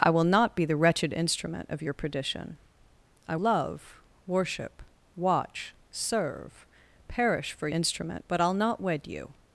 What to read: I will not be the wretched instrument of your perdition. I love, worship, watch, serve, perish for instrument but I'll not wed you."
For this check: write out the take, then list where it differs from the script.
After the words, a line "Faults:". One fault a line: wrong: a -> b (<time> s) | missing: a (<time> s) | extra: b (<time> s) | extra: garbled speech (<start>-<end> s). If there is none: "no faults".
I will not be the wretched instrument of your perdition. I love, worship, watch, serve, perish for instrument but I'll not wed you."
Faults:
no faults